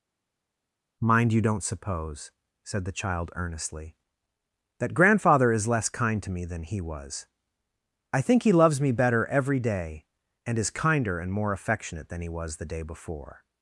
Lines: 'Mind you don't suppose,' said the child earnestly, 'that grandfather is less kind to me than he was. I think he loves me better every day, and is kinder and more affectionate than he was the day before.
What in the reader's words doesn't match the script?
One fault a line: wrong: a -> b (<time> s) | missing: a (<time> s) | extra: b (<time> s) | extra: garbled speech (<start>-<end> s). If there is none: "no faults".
no faults